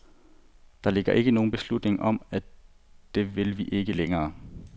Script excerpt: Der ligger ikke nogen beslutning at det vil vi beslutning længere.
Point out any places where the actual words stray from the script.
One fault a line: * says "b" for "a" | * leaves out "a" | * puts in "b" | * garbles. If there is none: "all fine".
* puts in "om"
* says "ikke" for "beslutning"